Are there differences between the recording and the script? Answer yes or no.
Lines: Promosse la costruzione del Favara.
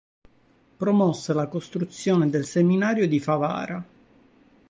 yes